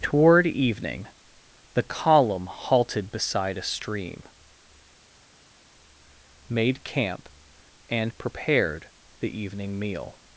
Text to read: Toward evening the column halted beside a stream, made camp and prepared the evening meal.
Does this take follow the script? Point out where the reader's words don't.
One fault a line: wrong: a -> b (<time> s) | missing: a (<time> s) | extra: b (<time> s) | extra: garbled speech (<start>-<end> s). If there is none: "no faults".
no faults